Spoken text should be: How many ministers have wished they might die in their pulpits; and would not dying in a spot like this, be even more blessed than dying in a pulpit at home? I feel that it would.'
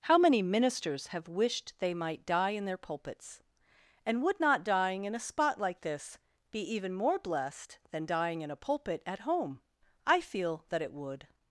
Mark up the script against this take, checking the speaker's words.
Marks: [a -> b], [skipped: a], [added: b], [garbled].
How many ministers have wished they might die in their pulpits; and would not dying in a spot like this, be even more blessed than dying in a pulpit at home? I feel that it would.'